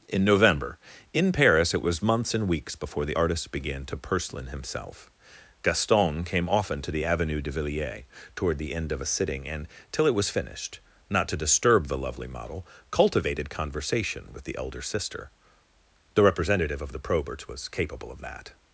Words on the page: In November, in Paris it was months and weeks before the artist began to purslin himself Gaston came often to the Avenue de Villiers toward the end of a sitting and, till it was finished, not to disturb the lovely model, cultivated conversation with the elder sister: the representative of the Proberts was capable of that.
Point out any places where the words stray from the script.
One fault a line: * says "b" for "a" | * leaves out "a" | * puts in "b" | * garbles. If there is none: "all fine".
all fine